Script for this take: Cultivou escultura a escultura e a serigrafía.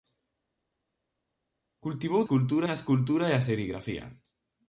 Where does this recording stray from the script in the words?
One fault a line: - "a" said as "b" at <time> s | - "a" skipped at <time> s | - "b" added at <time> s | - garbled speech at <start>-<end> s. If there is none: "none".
none